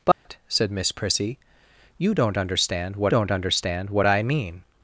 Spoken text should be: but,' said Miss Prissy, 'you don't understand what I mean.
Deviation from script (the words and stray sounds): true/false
true